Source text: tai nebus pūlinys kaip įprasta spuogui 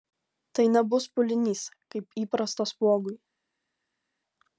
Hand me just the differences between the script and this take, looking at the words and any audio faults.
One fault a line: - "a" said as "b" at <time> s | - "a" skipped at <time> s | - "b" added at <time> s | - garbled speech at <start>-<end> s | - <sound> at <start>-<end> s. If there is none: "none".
none